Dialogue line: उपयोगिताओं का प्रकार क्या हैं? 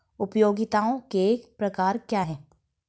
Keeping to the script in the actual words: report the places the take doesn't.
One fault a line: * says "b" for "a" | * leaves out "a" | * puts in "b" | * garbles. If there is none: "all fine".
* says "के" for "का"